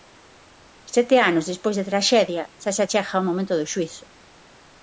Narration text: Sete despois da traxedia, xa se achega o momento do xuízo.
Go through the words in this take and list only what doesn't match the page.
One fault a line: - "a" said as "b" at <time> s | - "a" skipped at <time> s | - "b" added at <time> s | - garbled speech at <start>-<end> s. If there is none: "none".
- "anos" added at 1.3 s